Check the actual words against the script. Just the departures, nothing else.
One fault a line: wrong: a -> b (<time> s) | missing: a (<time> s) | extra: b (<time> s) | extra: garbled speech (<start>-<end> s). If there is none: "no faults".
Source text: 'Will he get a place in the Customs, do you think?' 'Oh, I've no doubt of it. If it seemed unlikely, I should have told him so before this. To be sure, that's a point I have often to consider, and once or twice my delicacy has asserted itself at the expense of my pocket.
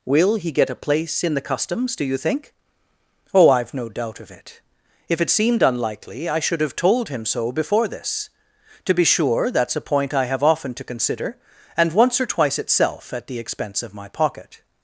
missing: my delicacy has asserted (12.6 s)